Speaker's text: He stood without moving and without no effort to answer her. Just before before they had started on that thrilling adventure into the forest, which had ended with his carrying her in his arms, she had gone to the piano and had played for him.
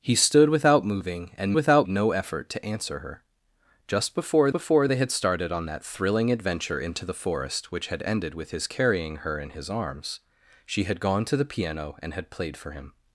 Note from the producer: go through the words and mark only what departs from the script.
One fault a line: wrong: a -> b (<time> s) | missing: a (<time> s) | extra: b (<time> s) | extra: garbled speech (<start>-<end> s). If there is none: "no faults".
no faults